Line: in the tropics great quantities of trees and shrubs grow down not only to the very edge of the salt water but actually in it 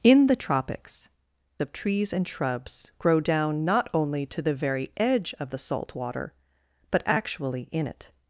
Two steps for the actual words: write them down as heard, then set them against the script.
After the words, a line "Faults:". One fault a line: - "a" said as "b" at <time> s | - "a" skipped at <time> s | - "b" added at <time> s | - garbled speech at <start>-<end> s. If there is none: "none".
in the tropics of trees and shrubs grow down not only to the very edge of the salt water but actually in it
Faults:
- "great quantities" skipped at 1.1 s